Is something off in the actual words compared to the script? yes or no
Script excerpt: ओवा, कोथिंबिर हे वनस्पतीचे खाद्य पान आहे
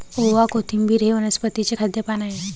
no